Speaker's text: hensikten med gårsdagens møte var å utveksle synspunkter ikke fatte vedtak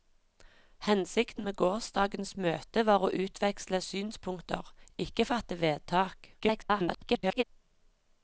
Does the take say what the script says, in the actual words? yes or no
no